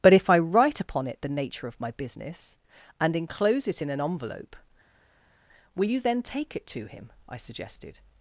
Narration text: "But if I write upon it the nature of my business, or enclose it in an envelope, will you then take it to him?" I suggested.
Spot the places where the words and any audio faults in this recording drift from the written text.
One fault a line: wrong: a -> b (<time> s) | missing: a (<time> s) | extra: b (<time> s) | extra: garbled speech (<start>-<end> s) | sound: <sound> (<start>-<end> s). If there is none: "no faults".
wrong: or -> and (3.0 s)